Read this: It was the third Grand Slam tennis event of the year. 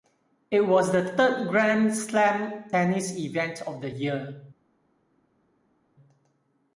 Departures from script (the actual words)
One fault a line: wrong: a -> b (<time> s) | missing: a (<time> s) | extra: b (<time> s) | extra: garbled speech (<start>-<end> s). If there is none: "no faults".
no faults